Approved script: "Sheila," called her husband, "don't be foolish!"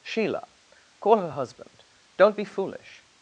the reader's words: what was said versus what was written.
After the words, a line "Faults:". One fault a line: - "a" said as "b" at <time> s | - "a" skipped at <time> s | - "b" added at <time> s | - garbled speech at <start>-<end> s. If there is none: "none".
"Sheila," call her husband, "don't be foolish!"
Faults:
- "called" said as "call" at 1.0 s